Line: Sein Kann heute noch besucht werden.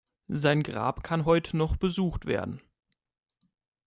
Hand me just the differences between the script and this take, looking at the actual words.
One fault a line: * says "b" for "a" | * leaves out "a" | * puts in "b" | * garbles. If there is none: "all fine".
* puts in "Grab"